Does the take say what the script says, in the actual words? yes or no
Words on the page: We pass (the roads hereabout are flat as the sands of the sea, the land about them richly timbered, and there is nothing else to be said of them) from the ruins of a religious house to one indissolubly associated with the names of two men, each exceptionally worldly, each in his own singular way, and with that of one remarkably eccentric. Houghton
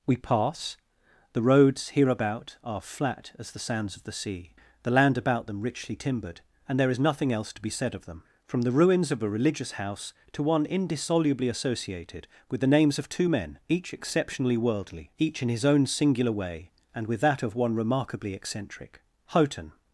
yes